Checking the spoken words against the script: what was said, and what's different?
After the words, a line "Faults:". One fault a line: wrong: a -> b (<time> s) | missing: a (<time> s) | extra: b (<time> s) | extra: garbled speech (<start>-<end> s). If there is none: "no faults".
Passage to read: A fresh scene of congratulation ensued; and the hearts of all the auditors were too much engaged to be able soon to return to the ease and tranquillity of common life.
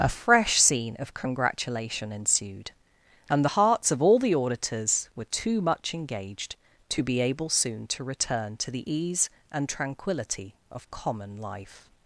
A fresh scene of congratulation ensued; and the hearts of all the auditors were too much engaged to be able soon to return to the ease and tranquillity of common life.
Faults:
no faults